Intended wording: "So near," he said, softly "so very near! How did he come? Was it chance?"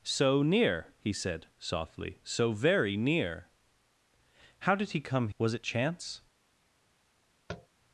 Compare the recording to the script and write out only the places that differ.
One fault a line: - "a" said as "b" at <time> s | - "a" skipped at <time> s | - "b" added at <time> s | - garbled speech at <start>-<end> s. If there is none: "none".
none